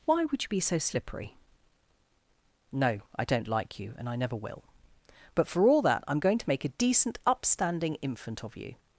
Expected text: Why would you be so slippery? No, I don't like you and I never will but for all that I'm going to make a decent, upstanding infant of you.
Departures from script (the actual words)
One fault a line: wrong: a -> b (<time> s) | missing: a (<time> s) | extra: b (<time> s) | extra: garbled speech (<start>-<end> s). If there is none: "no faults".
no faults